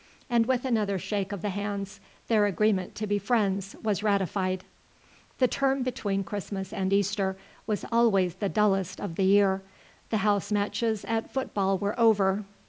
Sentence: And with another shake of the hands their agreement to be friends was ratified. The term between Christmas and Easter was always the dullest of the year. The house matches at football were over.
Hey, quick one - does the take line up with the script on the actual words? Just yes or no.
yes